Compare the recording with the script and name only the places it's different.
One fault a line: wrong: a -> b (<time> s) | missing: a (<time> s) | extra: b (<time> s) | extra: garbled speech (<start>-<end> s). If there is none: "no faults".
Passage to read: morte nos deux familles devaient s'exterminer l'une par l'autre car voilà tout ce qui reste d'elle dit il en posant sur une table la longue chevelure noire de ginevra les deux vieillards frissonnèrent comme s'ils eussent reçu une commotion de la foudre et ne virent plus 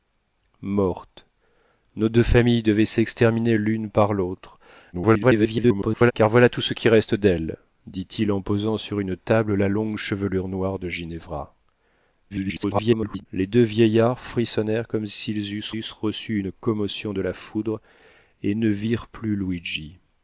extra: garbled speech (4.9-6.1 s)
extra: garbled speech (12.3-13.3 s)
extra: eussent (15.8 s)